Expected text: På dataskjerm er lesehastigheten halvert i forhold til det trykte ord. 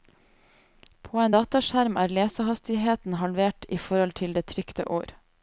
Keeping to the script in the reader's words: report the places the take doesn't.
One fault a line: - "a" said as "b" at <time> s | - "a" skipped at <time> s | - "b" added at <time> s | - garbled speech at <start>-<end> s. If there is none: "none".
- "en" added at 1.2 s